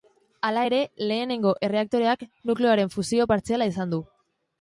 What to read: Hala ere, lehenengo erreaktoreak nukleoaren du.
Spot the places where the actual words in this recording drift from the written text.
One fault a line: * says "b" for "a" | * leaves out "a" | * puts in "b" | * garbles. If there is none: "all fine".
* puts in "fusio partziala izan"